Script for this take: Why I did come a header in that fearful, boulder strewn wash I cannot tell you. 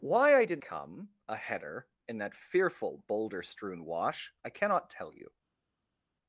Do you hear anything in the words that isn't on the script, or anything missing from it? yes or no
no